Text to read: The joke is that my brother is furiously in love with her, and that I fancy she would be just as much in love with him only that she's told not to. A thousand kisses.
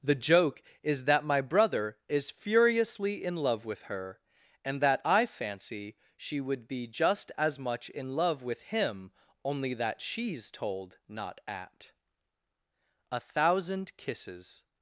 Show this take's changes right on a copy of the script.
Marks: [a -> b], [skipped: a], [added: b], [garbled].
The joke is that my brother is furiously in love with her, and that I fancy she would be just as much in love with him only that she's told not [to. -> at] A thousand kisses.